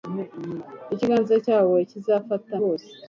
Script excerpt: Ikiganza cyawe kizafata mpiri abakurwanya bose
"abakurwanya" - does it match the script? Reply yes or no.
no